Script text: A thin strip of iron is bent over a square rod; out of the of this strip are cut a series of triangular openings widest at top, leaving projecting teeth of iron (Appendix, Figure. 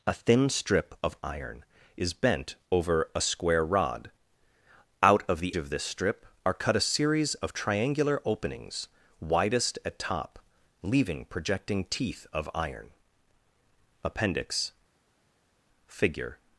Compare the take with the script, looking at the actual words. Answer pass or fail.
pass